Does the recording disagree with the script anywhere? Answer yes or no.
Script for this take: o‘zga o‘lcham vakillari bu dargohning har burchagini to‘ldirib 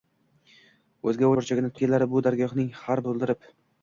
yes